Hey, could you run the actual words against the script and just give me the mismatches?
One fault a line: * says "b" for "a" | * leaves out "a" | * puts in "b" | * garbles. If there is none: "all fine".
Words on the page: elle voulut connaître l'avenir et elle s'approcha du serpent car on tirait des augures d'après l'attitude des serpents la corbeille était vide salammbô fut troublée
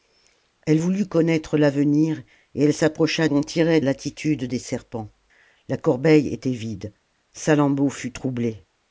* leaves out "du serpent car"
* leaves out "des augures d'après"